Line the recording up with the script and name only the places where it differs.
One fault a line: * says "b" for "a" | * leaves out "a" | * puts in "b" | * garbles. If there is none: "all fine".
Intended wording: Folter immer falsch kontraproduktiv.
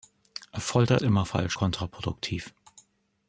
all fine